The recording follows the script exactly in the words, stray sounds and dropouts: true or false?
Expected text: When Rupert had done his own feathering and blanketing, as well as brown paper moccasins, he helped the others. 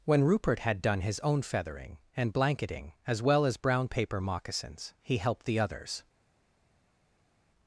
true